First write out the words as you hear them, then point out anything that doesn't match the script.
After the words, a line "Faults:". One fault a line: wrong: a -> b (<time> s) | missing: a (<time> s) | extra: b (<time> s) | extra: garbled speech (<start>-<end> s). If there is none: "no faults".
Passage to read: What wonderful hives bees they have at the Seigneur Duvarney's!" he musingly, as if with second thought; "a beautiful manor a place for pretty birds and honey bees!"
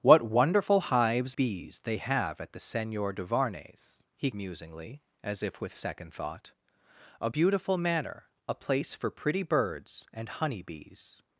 What wonderful hives bees they have at the Seigneur Duvarney's!" he musingly, as if with second thought; "a beautiful manor a place for pretty birds and honey bees!"
Faults:
no faults